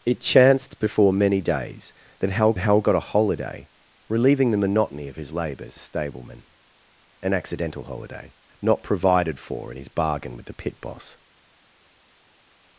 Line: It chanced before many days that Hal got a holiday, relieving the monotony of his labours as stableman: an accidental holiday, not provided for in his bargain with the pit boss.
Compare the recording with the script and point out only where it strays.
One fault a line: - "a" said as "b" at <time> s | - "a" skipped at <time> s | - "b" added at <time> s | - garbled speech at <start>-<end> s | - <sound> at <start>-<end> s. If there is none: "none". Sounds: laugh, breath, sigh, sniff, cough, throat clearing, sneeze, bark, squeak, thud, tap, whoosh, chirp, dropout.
- "Hal" added at 2.6 s
- "as" skipped at 5.8 s